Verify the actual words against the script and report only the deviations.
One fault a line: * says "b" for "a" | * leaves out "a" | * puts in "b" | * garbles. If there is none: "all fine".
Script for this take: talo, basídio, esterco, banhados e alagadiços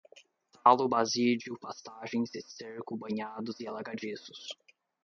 * puts in "pastagens"